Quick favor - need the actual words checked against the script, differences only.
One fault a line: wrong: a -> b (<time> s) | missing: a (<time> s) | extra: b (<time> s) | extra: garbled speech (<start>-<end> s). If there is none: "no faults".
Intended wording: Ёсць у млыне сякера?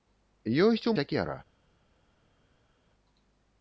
missing: млыне (0.9 s)